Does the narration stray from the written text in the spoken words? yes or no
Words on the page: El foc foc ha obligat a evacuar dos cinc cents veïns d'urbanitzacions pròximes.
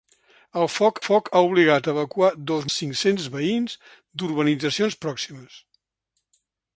no